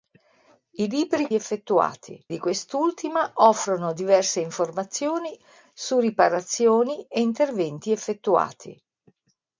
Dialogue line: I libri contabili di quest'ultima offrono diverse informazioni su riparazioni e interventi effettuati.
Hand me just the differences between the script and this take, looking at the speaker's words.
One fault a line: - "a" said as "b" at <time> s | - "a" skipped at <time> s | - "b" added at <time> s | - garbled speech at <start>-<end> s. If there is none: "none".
- "contabili" said as "effettuati" at 1.3 s